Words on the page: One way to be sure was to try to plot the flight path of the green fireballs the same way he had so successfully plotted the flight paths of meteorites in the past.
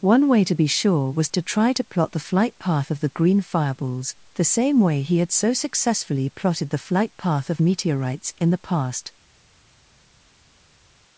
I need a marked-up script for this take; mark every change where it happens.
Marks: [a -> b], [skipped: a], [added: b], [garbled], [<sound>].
One way to be sure was to try to plot the flight path of the green fireballs the same way he had so successfully plotted the flight [paths -> path] of meteorites in the past.